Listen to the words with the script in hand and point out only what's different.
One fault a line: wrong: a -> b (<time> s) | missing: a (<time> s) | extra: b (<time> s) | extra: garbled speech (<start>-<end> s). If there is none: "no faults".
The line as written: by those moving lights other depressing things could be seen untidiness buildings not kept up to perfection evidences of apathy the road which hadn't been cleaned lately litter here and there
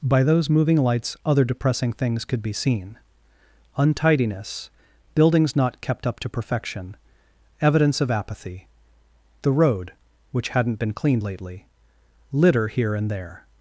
wrong: evidences -> evidence (7.6 s)